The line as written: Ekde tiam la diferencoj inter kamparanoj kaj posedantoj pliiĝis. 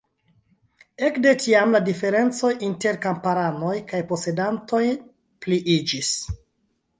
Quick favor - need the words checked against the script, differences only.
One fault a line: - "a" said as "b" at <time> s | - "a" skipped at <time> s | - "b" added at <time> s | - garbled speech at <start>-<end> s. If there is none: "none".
none